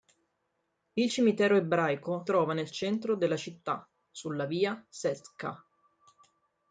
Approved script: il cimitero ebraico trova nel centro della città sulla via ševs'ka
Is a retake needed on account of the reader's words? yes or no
no